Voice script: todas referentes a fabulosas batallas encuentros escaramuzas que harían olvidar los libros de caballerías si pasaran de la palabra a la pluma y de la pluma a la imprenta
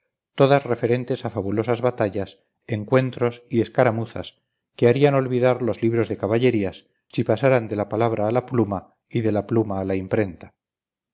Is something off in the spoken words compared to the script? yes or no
yes